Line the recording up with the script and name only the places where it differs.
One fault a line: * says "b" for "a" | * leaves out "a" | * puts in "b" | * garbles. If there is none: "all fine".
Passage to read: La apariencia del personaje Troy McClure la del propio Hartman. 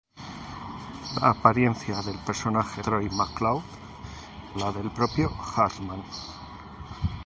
all fine